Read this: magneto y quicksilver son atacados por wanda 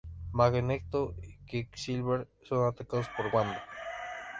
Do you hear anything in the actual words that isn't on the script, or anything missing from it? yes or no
no